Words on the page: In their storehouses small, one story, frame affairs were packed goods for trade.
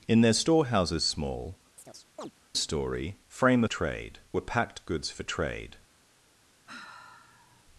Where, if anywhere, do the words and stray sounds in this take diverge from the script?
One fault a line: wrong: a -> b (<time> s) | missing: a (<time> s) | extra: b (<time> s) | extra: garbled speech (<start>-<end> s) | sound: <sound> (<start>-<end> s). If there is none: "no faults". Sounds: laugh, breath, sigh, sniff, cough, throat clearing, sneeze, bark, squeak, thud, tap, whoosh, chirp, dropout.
missing: one (1.6 s)
sound: chirp (1.8-2.3 s)
wrong: affairs -> trade (3.6 s)
sound: sigh (6.7-7.6 s)